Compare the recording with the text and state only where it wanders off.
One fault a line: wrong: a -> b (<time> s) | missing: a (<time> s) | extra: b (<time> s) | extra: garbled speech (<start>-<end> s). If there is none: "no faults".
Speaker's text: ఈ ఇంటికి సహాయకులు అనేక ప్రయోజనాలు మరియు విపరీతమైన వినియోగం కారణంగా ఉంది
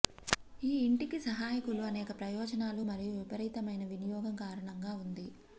no faults